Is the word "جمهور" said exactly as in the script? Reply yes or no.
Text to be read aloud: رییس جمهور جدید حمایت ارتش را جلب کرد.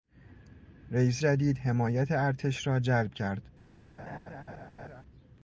no